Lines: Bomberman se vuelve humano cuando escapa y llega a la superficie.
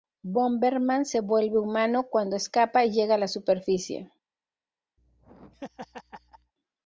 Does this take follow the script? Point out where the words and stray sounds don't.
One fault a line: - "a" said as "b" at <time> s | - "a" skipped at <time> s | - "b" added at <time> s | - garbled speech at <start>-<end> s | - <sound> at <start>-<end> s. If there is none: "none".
- laugh at 5.0-6.5 s